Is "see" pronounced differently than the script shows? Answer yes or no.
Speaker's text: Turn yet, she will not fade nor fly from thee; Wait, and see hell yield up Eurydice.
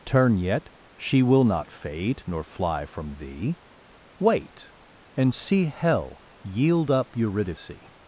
no